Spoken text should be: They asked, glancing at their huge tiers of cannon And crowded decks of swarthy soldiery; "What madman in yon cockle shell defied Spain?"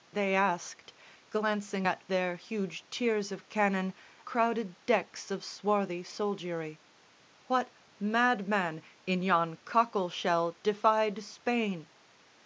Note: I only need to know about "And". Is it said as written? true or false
false